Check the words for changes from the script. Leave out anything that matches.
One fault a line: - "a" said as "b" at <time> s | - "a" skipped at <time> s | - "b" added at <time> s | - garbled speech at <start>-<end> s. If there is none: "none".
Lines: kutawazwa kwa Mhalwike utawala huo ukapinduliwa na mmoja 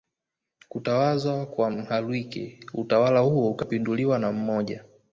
none